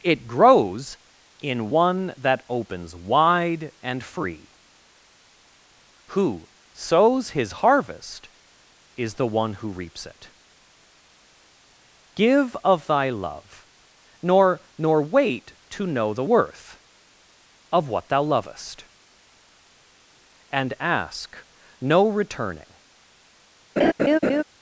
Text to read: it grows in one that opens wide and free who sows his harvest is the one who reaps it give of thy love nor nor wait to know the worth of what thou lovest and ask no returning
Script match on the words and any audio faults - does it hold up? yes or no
no